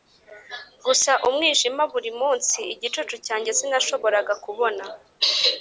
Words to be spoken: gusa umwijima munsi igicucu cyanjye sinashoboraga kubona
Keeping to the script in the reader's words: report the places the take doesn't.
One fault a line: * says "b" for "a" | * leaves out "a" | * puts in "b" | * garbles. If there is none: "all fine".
* puts in "buri"